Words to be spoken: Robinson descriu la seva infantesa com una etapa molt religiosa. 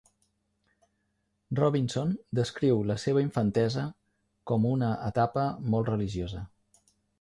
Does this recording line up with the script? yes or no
yes